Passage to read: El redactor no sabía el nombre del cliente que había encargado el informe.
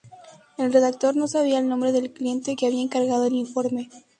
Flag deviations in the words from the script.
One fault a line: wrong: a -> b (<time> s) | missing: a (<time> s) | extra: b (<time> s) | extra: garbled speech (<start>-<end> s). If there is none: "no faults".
no faults